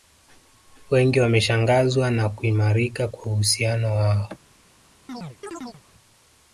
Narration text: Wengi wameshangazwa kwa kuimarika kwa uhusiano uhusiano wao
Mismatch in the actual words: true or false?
true